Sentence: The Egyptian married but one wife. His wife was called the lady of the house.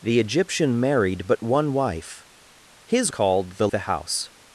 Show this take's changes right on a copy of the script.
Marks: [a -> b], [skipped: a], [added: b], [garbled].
The Egyptian married but one wife. His [skipped: wife was] called the [skipped: lady of] the house.